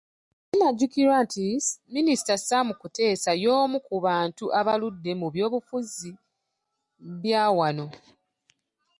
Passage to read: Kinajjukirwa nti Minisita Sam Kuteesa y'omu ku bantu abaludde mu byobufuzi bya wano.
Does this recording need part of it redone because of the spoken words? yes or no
no